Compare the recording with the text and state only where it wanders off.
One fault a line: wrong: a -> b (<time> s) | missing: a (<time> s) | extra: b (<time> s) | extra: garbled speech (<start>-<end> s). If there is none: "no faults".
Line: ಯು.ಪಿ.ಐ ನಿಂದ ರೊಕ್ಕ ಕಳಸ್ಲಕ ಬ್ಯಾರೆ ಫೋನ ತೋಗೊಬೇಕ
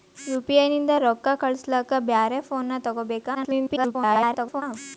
extra: garbled speech (3.3-4.6 s)